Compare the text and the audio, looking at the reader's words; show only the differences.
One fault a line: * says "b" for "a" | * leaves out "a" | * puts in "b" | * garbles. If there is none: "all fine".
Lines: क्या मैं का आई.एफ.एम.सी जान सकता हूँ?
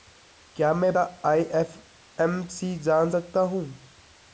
all fine